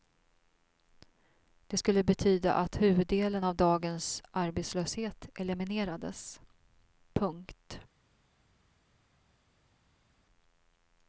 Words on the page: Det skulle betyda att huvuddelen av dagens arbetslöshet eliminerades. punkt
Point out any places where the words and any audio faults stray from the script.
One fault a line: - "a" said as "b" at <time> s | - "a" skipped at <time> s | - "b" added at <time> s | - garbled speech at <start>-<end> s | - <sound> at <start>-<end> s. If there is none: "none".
none